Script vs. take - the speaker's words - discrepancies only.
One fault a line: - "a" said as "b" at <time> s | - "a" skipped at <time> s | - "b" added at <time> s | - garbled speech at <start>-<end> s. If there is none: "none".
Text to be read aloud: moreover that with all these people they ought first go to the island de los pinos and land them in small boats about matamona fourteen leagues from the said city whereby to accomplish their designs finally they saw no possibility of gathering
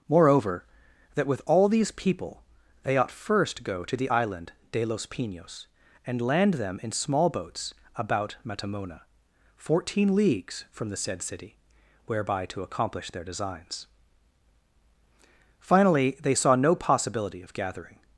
none